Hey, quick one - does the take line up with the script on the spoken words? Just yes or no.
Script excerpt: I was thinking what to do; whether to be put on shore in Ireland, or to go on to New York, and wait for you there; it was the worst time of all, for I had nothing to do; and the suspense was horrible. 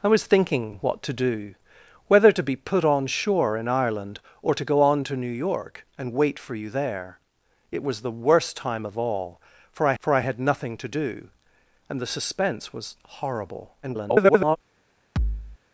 no